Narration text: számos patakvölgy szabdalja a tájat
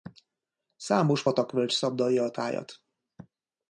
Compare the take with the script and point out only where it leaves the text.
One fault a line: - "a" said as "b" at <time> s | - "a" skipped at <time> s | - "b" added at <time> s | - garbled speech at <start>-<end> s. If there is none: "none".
none